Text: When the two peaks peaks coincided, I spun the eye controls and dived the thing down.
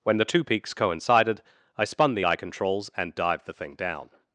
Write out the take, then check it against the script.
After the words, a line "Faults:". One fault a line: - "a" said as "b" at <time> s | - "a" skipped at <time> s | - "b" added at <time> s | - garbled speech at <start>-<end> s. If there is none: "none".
When the two peaks coincided, I spun the eye controls and dived the thing down.
Faults:
- "peaks" skipped at 0.7 s